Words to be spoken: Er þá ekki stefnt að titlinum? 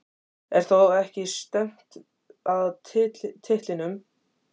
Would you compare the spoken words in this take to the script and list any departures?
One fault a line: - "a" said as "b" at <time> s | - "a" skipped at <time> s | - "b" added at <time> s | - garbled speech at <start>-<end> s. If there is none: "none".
none